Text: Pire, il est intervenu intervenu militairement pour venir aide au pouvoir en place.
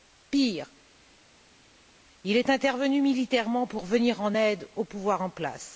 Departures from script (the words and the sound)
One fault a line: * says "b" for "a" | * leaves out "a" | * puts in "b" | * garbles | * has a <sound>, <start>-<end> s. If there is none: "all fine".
* leaves out "intervenu"
* puts in "en"